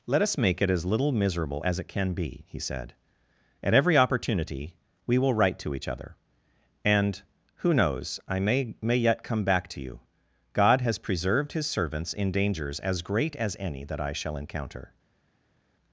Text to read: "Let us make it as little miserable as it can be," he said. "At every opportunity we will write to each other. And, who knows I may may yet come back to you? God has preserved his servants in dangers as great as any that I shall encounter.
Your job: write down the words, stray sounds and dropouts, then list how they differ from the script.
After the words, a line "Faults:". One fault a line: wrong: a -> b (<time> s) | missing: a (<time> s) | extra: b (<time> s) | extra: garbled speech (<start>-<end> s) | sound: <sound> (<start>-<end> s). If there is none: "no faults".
"Let us make it as little miserable as it can be," he said. "At every opportunity we will write to each other. And, who knows I may may yet come back to you? God has preserved his servants in dangers as great as any that I shall encounter.
Faults:
no faults